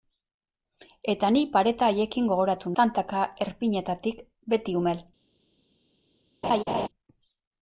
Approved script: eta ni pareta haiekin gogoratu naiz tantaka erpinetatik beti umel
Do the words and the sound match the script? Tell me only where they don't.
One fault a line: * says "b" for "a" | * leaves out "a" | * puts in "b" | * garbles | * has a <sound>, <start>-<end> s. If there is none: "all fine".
* leaves out "naiz"
* has a laugh, 6.4-6.9 s